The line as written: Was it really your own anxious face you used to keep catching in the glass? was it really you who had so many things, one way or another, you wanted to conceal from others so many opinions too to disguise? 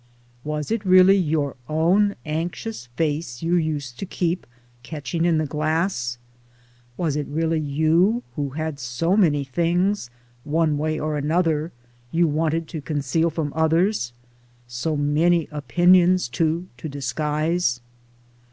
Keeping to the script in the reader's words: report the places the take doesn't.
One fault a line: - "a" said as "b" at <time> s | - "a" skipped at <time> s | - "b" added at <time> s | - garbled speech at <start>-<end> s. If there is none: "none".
none